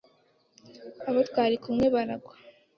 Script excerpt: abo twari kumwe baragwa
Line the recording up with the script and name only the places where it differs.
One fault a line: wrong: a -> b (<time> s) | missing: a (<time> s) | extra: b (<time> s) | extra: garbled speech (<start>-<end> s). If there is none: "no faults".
no faults